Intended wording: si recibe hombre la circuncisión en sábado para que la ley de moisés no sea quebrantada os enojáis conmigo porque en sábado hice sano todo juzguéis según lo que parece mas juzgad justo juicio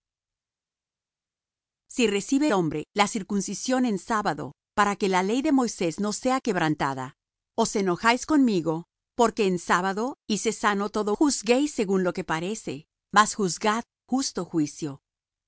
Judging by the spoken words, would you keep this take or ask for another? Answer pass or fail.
pass